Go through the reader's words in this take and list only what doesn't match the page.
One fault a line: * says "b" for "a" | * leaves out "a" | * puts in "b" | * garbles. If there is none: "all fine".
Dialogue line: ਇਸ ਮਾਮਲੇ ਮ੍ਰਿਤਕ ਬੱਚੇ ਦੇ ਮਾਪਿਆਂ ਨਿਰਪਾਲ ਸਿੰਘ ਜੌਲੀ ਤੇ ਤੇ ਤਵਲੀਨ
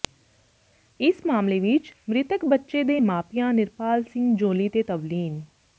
* puts in "ਵਿੱਚ"
* leaves out "ਤੇ"